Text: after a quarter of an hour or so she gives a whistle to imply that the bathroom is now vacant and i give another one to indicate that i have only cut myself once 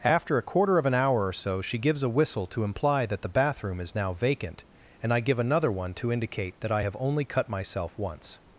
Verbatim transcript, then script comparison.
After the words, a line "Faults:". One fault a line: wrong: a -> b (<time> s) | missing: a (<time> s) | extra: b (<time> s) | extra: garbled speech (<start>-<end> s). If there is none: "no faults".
after a quarter of an hour or so she gives a whistle to imply that the bathroom is now vacant and i give another one to indicate that i have only cut myself once
Faults:
no faults